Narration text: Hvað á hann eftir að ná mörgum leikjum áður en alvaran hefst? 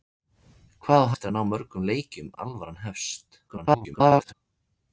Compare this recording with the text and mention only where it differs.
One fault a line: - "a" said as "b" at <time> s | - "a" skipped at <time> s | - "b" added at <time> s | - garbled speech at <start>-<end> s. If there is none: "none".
- "hann" skipped at 1.1 s
- "áður" skipped at 2.3 s
- garbled speech at 3.5-4.3 s